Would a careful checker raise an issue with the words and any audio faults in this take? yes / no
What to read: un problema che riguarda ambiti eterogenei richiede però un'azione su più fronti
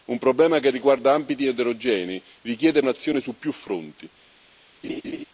yes